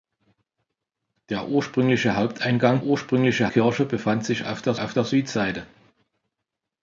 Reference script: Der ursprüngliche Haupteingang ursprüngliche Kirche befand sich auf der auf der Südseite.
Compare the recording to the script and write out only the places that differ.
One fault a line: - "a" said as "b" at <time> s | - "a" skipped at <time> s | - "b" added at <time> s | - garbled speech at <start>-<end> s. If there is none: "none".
none